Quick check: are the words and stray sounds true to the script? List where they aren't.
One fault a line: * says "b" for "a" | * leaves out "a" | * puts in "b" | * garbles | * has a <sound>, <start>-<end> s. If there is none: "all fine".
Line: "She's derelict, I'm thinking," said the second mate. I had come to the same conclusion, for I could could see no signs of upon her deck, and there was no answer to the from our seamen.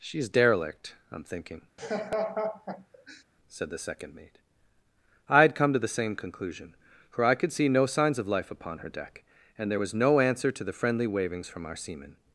* has a laugh, 1.8-3.2 s
* leaves out "could"
* puts in "life"
* puts in "friendly wavings"